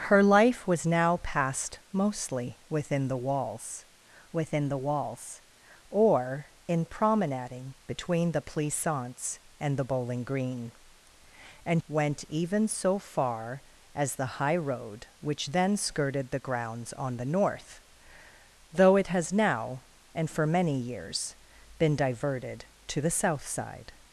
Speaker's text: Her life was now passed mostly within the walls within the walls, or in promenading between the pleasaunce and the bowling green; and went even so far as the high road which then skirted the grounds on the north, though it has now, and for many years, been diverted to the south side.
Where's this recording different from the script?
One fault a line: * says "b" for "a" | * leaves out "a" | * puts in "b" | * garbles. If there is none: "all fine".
all fine